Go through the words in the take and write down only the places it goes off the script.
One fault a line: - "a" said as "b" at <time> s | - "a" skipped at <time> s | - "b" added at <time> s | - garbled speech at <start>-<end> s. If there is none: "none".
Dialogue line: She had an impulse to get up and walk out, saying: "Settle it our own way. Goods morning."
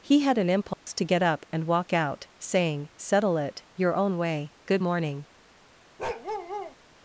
- "She" said as "He" at 0.0 s
- "our" said as "your" at 3.8 s
- "Goods" said as "Good" at 4.7 s